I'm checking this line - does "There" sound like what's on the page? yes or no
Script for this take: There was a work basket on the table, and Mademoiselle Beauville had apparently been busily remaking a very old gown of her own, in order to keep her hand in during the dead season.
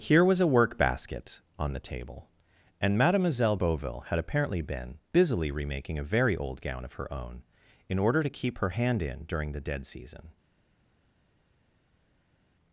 no